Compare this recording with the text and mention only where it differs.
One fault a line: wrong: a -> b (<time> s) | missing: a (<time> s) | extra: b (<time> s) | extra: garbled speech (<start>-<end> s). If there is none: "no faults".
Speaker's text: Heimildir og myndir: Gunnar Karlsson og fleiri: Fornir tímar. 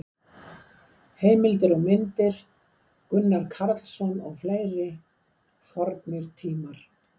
no faults